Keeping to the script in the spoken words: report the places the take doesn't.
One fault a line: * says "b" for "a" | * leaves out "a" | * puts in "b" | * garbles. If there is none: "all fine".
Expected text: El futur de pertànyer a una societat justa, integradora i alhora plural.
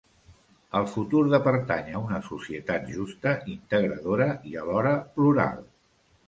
all fine